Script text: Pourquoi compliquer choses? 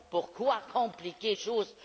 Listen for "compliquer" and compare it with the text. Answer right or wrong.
right